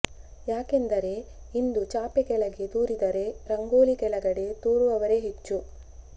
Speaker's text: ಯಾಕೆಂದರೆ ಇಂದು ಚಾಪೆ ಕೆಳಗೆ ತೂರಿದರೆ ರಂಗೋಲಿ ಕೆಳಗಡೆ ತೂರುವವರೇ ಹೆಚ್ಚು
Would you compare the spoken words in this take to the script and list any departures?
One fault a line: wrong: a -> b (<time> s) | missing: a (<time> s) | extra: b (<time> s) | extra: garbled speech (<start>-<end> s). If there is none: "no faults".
no faults